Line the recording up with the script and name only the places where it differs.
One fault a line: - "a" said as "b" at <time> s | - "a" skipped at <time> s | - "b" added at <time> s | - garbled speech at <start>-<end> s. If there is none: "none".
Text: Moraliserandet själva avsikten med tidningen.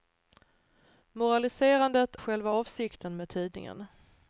none